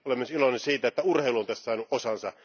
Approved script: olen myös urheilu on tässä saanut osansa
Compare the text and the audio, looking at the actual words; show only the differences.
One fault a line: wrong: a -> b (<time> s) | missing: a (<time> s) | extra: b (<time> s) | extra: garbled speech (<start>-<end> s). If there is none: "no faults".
extra: iloinen siitä että (0.3 s)